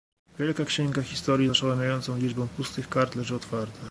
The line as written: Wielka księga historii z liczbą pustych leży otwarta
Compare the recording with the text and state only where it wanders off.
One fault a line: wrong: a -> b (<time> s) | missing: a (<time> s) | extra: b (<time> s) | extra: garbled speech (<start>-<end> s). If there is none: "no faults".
extra: oszałamiającą (1.5 s)
extra: kart (2.9 s)